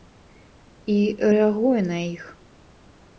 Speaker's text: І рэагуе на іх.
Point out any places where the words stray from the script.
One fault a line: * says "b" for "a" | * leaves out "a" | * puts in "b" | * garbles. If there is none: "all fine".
all fine